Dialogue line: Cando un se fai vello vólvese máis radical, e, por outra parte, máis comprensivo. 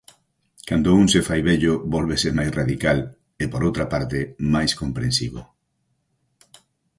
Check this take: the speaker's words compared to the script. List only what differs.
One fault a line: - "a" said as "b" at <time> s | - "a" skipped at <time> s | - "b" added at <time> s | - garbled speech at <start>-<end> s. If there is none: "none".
none